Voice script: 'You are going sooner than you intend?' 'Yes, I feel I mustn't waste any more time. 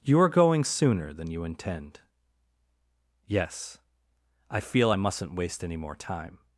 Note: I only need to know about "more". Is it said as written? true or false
true